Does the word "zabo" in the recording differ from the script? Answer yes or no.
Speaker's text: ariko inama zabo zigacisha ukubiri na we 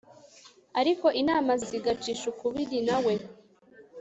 yes